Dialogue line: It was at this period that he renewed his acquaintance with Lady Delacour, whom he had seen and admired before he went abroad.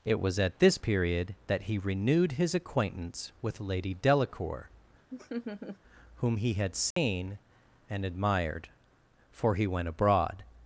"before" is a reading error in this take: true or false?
true